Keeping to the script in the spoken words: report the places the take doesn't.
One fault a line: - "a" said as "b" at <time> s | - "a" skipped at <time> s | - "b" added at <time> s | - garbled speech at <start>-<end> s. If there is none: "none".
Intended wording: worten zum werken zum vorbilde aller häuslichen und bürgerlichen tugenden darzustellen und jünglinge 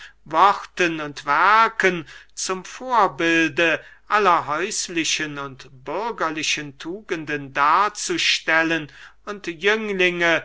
- "zum" said as "und" at 1.0 s